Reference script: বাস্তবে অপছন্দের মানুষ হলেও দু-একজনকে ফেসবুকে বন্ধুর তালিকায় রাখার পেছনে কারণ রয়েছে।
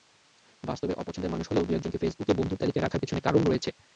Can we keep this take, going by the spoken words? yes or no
yes